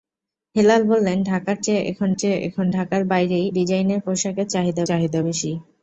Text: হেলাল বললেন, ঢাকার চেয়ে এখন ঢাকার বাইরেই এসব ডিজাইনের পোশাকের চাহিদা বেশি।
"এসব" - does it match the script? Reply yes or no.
no